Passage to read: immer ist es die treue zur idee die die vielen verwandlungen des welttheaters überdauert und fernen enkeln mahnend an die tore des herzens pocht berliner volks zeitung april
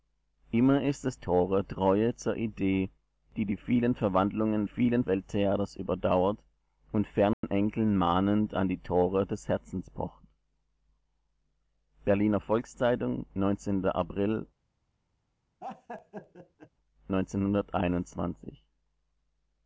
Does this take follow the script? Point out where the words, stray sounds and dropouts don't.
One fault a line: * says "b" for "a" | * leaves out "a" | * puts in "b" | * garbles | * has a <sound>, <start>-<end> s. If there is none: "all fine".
* says "tore" for "die"
* says "vielen" for "des"
* has a dropout, 7.3-7.4 s
* has a laugh, 15.6-16.7 s